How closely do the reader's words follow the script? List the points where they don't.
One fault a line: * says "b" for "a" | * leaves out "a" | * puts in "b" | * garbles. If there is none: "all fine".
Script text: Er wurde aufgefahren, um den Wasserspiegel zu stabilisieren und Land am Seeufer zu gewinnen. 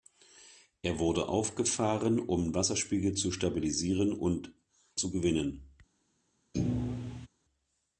* leaves out "den"
* leaves out "Land am Seeufer"